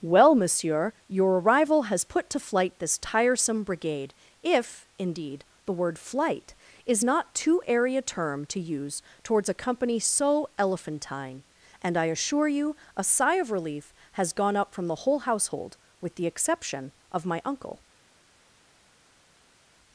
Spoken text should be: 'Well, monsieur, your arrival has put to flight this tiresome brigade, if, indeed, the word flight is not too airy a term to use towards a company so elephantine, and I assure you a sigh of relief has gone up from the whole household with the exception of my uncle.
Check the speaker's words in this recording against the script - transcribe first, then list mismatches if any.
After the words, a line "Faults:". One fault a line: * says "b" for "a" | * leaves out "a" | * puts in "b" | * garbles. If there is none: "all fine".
'Well, monsieur, your arrival has put to flight this tiresome brigade, if, indeed, the word flight is not too airy a term to use towards a company so elephantine, and I assure you a sigh of relief has gone up from the whole household with the exception of my uncle.
Faults:
all fine